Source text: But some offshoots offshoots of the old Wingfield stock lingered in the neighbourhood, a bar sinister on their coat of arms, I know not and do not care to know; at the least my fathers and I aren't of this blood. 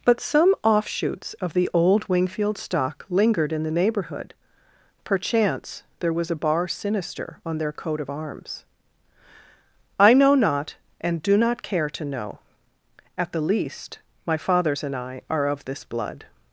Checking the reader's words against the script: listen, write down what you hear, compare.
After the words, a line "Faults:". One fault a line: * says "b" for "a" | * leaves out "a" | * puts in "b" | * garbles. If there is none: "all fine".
But some offshoots of the old Wingfield stock lingered in the neighbourhood, perchance there was a bar sinister on their coat of arms, I know not and do not care to know; at the least my fathers and I are of this blood.
Faults:
* leaves out "offshoots"
* puts in "perchance there was"
* says "are" for "aren't"